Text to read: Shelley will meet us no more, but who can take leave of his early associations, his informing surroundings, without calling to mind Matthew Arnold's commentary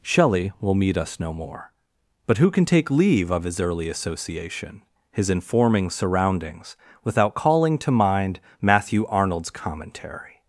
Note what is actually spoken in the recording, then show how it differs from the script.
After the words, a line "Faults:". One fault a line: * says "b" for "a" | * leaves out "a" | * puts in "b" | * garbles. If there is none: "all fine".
Shelley will meet us no more, but who can take leave of his early association, his informing surroundings, without calling to mind Matthew Arnold's commentary
Faults:
* says "association" for "associations"